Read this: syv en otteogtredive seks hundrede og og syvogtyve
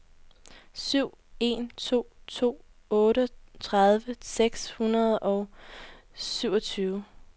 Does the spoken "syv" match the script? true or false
true